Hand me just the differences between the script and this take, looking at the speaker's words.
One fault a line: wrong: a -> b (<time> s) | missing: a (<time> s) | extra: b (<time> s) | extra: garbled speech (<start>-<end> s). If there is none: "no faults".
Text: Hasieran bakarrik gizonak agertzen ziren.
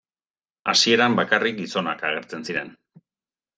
no faults